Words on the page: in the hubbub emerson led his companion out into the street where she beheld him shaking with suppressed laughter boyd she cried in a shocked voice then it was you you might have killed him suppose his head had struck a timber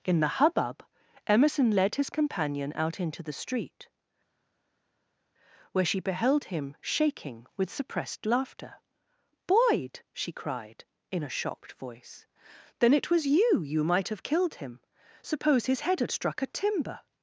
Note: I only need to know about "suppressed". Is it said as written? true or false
true